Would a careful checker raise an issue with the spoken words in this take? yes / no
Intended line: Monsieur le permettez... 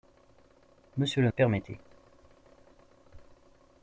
no